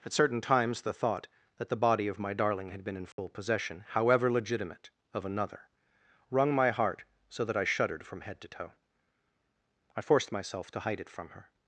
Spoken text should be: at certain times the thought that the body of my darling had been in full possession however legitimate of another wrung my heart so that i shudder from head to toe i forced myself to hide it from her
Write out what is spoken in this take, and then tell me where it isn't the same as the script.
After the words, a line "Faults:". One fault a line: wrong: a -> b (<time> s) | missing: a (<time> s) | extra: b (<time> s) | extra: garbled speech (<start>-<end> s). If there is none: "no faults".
at certain times the thought that the body of my darling had been in full possession however legitimate of another wrung my heart so that i shuddered from head to toe i forced myself to hide it from her
Faults:
wrong: shudder -> shuddered (7.6 s)